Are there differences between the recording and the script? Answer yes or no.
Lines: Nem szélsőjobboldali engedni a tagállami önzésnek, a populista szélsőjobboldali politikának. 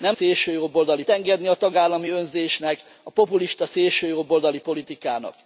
no